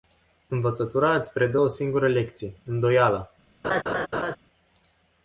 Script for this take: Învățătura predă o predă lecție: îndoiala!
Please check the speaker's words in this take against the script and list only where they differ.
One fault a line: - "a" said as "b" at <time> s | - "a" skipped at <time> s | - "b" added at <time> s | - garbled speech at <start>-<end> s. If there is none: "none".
- "îți" added at 1.1 s
- "predă" said as "singură" at 1.7 s